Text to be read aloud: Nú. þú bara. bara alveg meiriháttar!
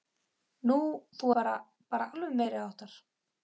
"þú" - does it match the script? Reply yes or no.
yes